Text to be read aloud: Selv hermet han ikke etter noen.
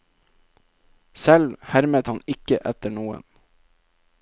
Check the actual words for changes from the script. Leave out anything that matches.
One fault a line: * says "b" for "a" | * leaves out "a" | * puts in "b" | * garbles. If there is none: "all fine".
all fine